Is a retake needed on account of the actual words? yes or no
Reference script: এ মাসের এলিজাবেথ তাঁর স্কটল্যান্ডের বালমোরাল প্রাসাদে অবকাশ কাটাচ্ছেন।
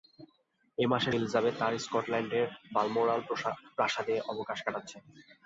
no